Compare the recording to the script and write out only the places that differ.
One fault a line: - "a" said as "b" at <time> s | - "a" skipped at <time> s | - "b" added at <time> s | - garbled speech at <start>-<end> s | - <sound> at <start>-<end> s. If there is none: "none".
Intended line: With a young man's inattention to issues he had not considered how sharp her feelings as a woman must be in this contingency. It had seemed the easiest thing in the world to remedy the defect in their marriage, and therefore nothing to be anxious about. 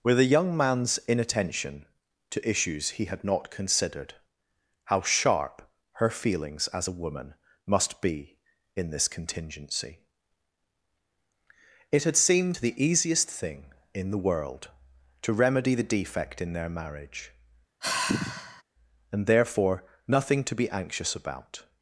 - sigh at 17.8-18.6 s